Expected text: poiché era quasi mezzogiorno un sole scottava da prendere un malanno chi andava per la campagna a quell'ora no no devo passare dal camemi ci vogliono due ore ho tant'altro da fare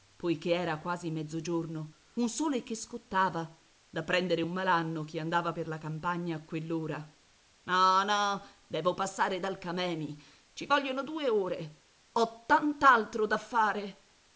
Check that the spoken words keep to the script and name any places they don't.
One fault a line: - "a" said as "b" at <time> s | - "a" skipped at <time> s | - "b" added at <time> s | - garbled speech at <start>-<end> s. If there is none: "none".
- "che" added at 2.6 s